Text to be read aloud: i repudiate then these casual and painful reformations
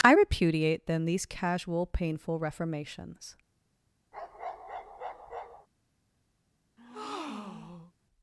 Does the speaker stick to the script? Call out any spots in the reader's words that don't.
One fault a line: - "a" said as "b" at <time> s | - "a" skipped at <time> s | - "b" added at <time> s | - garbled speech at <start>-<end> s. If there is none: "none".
- "and" skipped at 1.8 s